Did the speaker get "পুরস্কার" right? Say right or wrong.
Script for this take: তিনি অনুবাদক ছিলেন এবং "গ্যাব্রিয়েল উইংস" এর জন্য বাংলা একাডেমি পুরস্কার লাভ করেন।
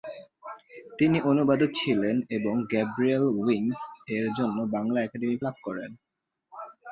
wrong